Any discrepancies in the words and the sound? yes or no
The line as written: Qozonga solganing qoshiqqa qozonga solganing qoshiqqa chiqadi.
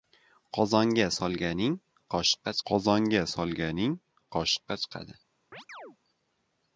yes